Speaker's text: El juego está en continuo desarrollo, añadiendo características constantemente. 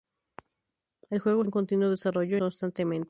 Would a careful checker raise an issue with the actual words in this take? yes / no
yes